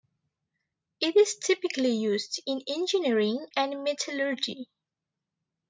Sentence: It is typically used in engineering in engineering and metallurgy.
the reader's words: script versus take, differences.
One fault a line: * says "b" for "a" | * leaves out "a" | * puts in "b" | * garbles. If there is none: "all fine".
* leaves out "in engineering"